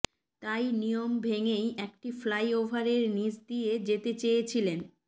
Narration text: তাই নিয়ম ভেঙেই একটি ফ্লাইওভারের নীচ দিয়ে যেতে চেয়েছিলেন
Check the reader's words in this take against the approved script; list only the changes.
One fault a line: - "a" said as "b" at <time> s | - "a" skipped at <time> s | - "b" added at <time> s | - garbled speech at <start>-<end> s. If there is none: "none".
none